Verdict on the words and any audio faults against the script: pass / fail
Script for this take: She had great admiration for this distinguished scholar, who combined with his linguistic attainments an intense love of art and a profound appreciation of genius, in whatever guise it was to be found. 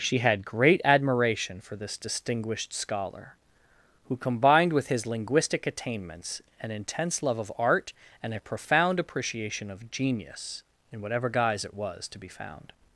pass